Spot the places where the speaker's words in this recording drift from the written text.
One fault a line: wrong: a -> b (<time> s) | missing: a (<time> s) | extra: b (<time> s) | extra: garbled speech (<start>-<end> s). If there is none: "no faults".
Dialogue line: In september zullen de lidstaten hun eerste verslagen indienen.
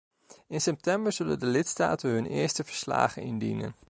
no faults